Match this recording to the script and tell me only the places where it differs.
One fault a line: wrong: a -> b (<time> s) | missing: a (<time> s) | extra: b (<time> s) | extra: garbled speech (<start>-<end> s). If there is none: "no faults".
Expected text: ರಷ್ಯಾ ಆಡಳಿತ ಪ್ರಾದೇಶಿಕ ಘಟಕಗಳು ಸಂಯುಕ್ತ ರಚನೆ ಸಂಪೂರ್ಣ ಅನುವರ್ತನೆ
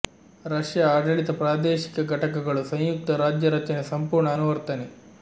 extra: ರಾಜ್ಯ (3.2 s)